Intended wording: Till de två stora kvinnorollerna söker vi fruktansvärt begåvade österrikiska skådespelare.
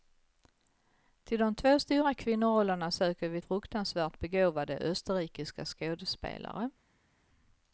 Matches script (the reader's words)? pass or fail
pass